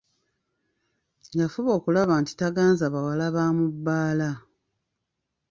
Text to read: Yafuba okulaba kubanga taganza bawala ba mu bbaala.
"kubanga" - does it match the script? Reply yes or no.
no